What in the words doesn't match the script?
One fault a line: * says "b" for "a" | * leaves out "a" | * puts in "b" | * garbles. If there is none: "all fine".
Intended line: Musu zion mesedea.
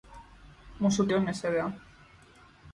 all fine